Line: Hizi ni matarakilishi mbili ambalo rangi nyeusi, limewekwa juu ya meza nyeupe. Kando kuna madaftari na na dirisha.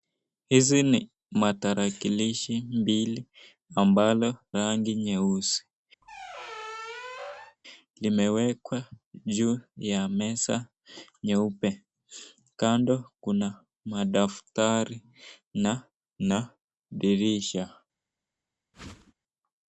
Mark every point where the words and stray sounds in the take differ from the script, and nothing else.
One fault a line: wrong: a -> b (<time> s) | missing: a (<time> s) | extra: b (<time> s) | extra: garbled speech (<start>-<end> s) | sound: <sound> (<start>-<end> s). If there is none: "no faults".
sound: squeak (6.0-7.6 s)
sound: whoosh (18.7-19.1 s)